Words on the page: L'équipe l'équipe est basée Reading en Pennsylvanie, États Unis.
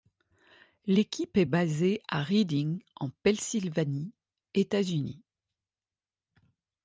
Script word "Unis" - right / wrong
right